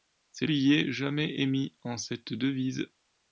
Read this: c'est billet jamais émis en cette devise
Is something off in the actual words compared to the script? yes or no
no